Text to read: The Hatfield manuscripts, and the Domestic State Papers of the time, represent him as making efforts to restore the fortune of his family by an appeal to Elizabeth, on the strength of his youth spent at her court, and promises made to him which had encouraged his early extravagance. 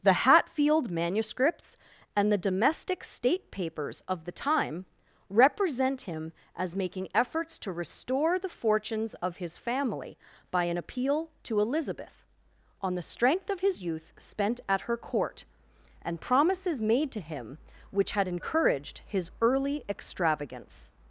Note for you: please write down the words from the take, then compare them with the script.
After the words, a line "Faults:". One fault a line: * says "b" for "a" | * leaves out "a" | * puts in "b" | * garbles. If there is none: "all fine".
The Hatfield manuscripts, and the Domestic State Papers of the time, represent him as making efforts to restore the fortunes of his family by an appeal to Elizabeth, on the strength of his youth spent at her court, and promises made to him which had encouraged his early extravagance.
Faults:
* says "fortunes" for "fortune"